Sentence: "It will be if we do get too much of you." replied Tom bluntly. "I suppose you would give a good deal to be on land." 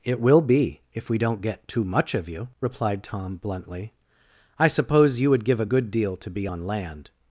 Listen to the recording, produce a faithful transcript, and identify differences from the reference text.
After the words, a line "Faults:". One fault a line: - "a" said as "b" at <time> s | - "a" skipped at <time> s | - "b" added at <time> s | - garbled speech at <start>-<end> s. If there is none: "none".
"It will be if we don't get too much of you." replied Tom bluntly. "I suppose you would give a good deal to be on land."
Faults:
- "do" said as "don't" at 1.2 s